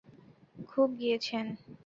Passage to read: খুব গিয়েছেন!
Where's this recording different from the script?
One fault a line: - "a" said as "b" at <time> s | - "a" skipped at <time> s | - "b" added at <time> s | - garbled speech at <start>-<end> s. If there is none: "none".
none